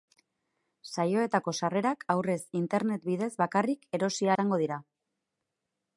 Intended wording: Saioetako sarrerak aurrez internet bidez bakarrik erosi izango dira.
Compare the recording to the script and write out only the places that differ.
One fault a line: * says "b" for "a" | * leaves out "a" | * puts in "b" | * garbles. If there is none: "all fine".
all fine